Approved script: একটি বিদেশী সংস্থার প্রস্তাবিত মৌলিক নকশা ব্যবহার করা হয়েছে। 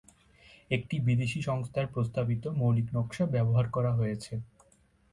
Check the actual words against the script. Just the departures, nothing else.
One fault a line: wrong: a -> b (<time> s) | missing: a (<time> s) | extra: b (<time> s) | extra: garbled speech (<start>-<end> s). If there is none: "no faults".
no faults